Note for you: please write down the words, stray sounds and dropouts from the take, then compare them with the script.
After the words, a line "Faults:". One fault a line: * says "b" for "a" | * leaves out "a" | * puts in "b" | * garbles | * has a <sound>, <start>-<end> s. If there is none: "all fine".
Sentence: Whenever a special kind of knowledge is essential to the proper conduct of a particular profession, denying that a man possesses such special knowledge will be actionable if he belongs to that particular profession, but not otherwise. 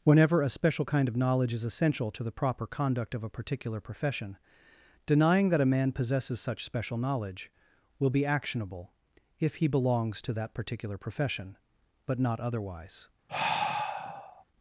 Whenever a special kind of knowledge is essential to the proper conduct of a particular profession, denying that a man possesses such special knowledge will be actionable if he belongs to that particular profession, but not otherwise.
Faults:
* has a sigh, 13.3-14.4 s